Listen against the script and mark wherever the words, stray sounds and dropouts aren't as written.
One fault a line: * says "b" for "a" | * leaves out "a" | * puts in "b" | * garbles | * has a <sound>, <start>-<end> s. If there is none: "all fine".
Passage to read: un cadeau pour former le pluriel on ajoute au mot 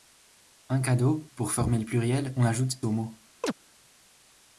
* has a chirp, 3.4-3.5 s